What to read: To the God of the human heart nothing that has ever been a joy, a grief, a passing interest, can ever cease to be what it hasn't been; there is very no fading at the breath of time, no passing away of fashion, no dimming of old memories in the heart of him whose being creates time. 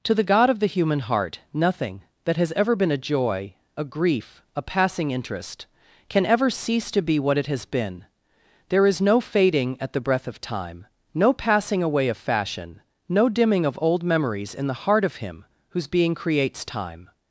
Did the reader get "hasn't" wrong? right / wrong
wrong